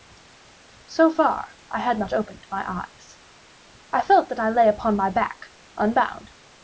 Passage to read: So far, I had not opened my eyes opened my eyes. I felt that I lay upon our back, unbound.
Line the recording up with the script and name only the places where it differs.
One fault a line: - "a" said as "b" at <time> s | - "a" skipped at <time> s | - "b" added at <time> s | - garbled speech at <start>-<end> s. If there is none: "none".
- "opened my eyes" skipped at 3.2 s
- "our" said as "my" at 5.0 s